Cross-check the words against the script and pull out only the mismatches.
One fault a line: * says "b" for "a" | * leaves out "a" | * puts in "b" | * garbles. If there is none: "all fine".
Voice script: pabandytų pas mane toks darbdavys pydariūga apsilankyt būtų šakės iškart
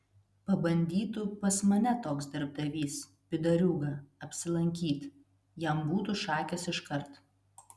* puts in "jam"